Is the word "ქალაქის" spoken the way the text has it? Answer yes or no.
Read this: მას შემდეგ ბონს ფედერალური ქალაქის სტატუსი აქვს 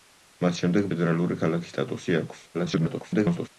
yes